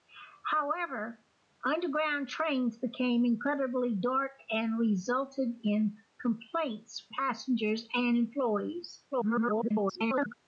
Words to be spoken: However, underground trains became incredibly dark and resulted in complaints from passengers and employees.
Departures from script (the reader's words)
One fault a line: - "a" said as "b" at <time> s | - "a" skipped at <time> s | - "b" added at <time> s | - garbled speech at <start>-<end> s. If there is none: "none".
- "from" skipped at 7.1 s
- garbled speech at 9.1-10.3 s